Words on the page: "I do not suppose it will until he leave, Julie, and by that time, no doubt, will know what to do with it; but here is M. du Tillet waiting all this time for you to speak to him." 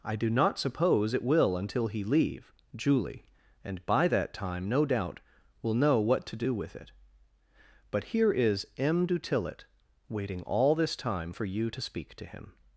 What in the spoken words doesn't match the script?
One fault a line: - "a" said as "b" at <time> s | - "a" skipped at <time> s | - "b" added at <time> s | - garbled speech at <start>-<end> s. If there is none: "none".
none